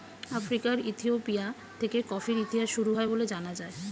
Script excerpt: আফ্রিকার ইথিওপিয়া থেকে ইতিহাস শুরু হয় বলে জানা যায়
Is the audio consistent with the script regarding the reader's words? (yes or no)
no